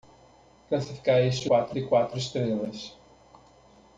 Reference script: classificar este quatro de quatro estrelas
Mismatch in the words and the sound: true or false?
false